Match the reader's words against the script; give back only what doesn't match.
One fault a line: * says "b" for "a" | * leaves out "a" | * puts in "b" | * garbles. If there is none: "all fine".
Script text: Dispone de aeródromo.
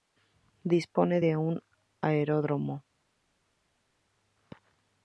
* puts in "un"